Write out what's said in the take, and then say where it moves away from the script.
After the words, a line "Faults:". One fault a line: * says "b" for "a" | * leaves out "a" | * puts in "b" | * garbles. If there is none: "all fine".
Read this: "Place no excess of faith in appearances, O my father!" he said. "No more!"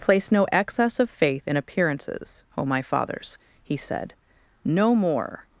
"Place no excess of faith in appearances, O my fathers!" he said. "No more!"
Faults:
* says "fathers" for "father"